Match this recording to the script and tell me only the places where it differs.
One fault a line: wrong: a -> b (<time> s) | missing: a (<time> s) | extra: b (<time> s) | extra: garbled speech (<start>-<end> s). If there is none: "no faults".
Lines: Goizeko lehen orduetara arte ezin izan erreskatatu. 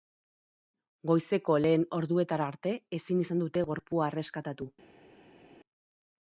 extra: dute gorpua (3.5 s)